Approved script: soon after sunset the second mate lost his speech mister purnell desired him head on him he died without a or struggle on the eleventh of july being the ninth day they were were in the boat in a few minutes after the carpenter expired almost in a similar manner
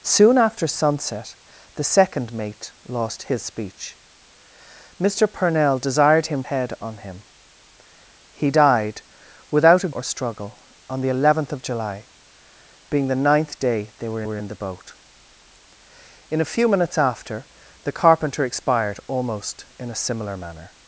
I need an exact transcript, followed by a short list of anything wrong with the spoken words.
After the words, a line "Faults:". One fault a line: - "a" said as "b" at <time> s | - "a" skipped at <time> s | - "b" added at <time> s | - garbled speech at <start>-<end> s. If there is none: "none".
soon after sunset the second mate lost his speech mister purnell desired him head on him he died without a or struggle on the eleventh of july being the ninth day they were were in the boat in a few minutes after the carpenter expired almost in a similar manner
Faults:
none